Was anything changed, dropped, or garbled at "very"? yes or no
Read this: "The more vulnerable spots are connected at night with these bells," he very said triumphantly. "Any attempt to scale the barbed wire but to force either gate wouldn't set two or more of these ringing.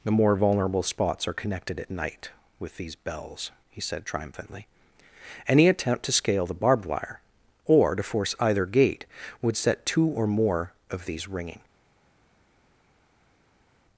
yes